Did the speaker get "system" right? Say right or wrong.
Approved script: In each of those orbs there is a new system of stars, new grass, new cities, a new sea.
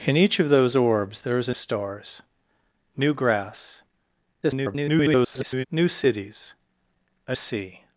wrong